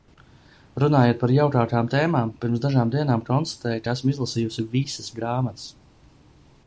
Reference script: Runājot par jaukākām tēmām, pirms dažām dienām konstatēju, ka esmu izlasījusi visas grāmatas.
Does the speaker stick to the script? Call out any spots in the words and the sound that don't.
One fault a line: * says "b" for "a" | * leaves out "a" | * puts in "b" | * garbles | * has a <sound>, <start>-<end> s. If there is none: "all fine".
all fine